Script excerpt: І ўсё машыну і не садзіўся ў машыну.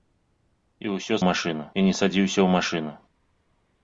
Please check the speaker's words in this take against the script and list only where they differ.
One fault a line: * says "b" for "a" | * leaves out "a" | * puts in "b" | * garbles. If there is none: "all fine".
all fine